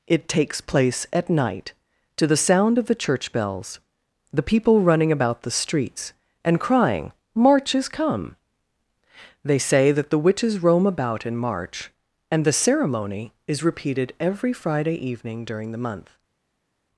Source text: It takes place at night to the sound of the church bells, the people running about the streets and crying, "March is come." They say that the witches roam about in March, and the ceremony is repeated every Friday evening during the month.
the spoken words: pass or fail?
pass